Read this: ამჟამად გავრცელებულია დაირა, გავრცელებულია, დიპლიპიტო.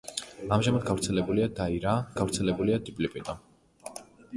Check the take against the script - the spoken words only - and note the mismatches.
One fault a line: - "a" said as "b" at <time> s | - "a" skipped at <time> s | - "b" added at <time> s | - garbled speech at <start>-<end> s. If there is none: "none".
none